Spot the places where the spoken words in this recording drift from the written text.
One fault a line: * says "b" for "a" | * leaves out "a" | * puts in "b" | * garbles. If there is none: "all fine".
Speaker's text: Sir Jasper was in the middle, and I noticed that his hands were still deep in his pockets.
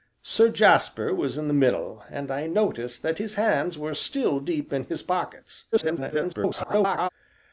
* garbles